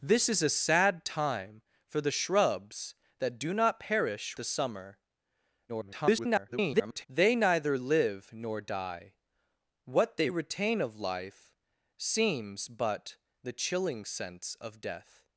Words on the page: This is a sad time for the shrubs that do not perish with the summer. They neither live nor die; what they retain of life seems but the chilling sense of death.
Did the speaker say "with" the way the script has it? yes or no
no